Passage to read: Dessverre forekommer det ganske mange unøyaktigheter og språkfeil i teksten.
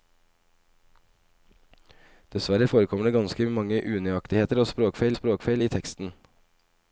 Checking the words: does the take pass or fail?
fail